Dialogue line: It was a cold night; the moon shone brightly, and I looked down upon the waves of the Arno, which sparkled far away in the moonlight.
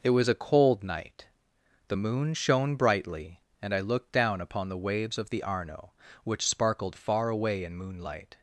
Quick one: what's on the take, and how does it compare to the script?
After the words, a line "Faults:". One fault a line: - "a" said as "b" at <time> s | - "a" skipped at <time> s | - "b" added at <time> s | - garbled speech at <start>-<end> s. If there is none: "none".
It was a cold night; the moon shone brightly, and I looked down upon the waves of the Arno, which sparkled far away in moonlight.
Faults:
- "the" skipped at 7.7 s